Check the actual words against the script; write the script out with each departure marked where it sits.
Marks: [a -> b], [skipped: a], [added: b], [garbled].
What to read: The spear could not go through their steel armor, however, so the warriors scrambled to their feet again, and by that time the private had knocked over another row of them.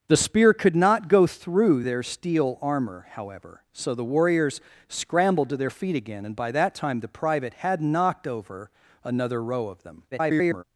The spear could not go through their steel armor, however, so the warriors scrambled to their feet again, and by that time the private had knocked over another row of them. [garbled]